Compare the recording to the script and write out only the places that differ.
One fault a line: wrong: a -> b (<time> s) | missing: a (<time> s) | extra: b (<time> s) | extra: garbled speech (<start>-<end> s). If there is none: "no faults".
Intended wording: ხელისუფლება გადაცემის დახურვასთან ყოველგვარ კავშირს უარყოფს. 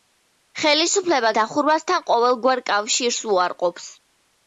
missing: გადაცემის (1.3 s)